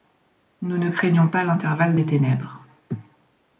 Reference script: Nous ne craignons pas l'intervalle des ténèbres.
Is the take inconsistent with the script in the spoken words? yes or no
no